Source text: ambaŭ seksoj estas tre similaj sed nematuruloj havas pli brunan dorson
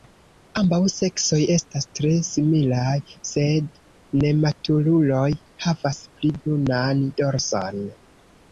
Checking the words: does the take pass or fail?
pass